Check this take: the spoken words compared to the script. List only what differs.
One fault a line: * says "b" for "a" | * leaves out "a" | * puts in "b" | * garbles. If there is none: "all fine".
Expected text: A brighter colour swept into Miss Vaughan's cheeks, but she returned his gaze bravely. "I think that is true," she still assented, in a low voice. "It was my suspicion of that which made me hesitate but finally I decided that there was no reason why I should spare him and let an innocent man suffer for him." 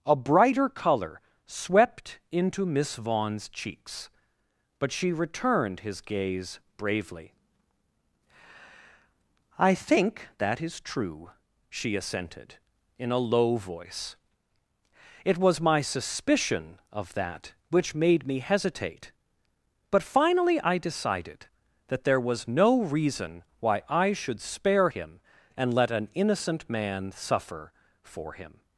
* leaves out "still"